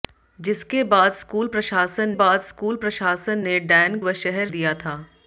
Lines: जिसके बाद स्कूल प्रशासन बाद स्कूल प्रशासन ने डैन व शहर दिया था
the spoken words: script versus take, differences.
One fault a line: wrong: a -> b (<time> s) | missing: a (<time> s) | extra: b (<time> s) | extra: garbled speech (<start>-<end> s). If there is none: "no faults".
no faults